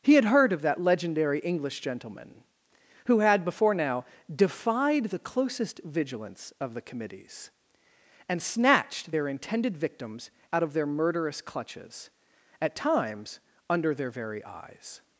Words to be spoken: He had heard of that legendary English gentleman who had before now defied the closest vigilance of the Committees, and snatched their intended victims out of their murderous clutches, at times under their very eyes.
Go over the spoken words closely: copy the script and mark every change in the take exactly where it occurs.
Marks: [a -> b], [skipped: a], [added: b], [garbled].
He had heard of that legendary English gentleman who had before now defied the closest vigilance of the Committees, and snatched their intended victims out of their murderous clutches, at times under their very eyes.